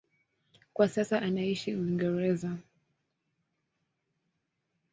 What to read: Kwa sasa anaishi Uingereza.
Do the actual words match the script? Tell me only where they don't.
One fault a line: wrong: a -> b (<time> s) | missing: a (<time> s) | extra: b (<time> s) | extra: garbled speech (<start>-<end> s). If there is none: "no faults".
no faults